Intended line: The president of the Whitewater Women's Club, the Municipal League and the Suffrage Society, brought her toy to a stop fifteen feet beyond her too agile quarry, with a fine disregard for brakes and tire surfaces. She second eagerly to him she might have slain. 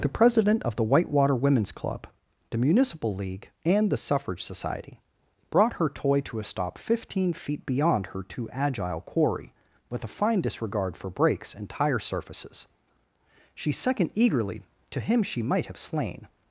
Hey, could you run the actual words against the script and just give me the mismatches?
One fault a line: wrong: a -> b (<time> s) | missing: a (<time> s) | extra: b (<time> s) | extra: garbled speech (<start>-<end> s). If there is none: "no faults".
no faults